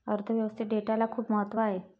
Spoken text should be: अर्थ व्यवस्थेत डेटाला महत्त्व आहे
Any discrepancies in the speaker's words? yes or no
yes